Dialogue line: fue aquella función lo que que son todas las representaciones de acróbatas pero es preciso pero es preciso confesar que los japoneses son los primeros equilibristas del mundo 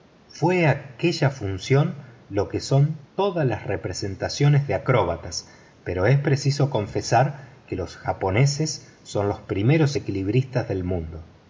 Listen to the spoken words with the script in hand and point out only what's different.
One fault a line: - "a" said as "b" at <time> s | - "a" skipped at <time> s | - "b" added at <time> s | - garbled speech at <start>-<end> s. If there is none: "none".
- "que" skipped at 2.6 s
- "pero es preciso" skipped at 6.7 s